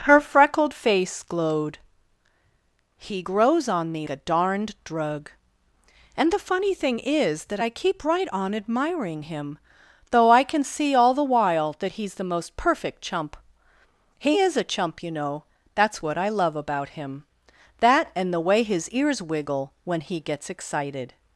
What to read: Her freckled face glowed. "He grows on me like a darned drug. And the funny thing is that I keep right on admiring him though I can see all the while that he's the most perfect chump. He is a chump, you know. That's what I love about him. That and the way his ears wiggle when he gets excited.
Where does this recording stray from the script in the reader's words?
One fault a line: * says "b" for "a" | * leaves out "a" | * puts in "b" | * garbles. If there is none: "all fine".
* leaves out "like"